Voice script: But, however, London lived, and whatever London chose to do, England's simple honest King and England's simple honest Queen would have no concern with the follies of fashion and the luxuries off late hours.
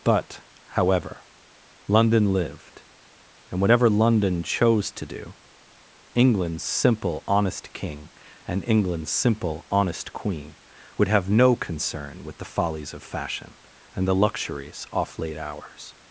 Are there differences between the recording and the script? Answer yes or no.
no